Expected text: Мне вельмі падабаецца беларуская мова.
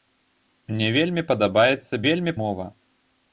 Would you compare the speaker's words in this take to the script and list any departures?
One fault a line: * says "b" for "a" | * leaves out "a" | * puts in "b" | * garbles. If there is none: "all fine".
* says "вельмі" for "беларуская"